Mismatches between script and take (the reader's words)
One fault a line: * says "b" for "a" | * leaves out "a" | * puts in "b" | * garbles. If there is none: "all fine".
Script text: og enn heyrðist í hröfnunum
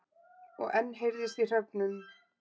all fine